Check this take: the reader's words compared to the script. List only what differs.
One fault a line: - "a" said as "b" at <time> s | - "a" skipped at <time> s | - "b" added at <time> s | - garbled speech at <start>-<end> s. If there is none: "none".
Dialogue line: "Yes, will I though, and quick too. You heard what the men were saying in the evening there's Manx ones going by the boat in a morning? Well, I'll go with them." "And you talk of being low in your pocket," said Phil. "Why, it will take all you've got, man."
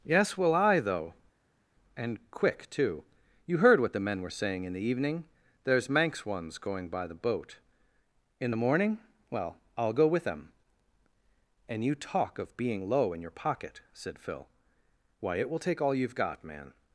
- "a" said as "the" at 8.5 s